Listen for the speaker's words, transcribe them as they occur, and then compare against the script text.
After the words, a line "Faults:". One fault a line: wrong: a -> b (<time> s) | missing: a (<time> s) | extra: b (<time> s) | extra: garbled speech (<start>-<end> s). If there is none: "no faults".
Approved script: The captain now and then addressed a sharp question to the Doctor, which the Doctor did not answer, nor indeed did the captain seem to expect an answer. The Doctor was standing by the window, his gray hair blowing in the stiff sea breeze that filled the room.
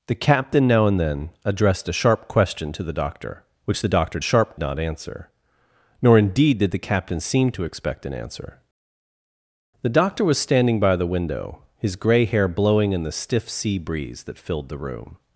The captain now and then addressed a sharp question to the Doctor, which the Doctor sharp not answer, nor indeed did the captain seem to expect an answer. The Doctor was standing by the window, his gray hair blowing in the stiff sea breeze that filled the room.
Faults:
wrong: did -> sharp (4.2 s)